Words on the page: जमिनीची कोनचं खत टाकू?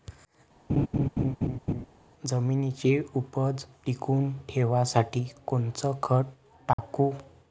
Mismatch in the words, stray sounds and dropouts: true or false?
true